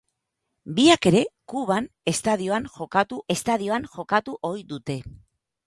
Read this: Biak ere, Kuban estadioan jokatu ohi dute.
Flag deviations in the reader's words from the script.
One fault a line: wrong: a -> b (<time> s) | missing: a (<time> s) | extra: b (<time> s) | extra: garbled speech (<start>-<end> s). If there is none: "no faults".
extra: estadioan jokatu (3.4 s)